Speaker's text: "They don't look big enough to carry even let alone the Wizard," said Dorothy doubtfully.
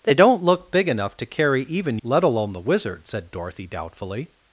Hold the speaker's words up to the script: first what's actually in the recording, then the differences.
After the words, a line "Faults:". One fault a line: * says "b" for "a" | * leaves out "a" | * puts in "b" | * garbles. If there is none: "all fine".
"They don't look big enough to carry even let alone the Wizard," said Dorothy doubtfully.
Faults:
all fine